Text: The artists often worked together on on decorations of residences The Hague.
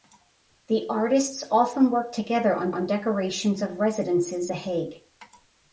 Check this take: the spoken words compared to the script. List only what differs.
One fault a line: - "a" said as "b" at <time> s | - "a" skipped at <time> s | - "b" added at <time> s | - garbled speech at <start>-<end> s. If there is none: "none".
none